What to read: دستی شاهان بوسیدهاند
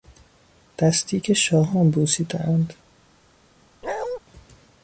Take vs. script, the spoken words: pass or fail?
fail